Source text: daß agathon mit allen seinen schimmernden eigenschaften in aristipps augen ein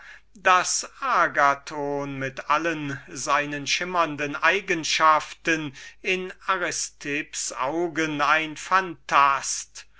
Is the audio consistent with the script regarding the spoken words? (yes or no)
yes